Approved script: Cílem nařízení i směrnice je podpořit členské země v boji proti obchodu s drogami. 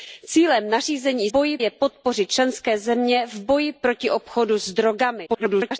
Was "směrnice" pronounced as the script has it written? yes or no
no